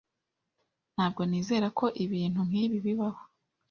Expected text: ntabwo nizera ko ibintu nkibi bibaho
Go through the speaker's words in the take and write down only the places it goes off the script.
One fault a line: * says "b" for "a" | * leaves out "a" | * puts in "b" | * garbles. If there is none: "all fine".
all fine